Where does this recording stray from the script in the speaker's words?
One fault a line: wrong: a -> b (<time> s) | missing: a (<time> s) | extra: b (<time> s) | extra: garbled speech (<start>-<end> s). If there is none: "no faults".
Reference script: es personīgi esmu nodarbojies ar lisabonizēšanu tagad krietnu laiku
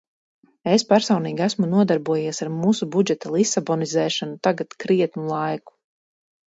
extra: mūsu budžeta (2.6 s)